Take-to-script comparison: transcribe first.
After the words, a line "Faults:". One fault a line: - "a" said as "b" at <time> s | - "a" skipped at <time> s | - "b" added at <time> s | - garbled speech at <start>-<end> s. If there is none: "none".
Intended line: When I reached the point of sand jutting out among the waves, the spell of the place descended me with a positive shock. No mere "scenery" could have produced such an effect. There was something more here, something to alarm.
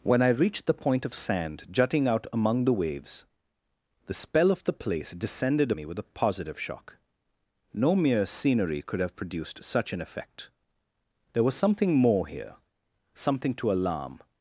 When I reached the point of sand jutting out among the waves, the spell of the place descended me with a positive shock. No mere "scenery" could have produced such an effect. There was something more here, something to alarm.
Faults:
none